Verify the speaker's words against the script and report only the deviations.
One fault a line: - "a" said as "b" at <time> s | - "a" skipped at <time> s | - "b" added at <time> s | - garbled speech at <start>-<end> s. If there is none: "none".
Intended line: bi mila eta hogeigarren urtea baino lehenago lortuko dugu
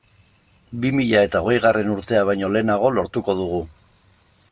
none